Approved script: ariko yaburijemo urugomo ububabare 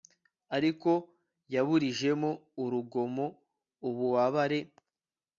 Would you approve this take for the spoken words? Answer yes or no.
yes